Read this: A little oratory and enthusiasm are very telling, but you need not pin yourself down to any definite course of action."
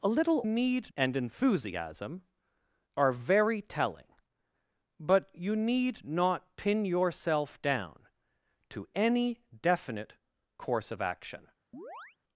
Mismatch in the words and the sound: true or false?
true